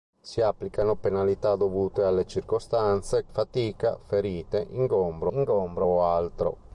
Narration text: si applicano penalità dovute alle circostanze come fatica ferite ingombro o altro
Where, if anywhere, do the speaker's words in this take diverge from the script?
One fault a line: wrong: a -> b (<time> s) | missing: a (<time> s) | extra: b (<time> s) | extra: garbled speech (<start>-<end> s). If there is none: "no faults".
missing: come (3.3 s)
extra: ingombro (5.3 s)